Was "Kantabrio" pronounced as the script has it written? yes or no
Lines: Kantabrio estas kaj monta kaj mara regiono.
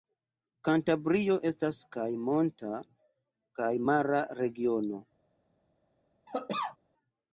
yes